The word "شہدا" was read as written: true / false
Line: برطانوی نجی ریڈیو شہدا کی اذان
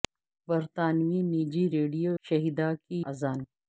true